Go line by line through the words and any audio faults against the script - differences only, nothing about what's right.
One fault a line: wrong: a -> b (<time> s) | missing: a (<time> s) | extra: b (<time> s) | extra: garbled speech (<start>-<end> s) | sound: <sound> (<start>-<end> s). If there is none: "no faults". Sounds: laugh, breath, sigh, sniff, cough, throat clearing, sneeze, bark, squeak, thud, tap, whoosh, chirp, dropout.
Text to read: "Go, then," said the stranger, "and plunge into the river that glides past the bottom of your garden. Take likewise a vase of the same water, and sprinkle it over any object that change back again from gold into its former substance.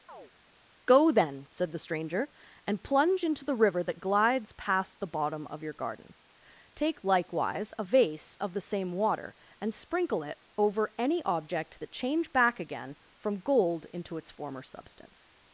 sound: chirp (0.1-0.3 s)